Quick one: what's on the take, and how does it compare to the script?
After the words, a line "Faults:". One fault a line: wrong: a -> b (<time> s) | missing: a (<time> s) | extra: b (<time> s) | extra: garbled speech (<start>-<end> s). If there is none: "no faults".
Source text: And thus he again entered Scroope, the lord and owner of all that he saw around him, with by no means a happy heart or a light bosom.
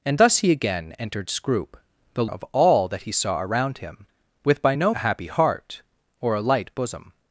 And thus he again entered Scroope, the of all that he saw around him, with by no a happy heart or a light bosom.
Faults:
missing: lord and owner (2.2 s)
missing: means (4.9 s)